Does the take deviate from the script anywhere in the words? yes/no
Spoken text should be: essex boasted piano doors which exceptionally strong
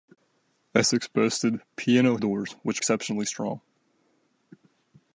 no